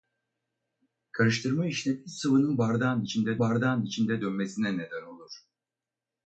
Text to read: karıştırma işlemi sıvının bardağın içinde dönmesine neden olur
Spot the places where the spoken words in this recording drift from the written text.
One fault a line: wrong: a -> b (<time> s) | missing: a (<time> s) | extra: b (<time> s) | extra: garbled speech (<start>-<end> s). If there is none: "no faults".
extra: bardağın içinde (3.4 s)